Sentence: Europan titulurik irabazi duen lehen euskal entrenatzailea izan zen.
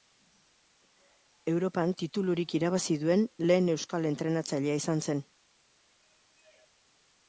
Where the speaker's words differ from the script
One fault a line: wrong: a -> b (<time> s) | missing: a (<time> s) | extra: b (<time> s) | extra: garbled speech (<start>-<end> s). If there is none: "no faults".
no faults